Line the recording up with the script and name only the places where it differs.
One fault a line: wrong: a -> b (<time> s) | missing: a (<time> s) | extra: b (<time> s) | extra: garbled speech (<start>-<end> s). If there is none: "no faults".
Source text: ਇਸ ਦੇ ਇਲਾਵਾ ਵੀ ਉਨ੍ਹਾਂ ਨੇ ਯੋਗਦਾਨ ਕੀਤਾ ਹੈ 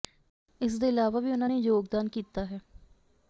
no faults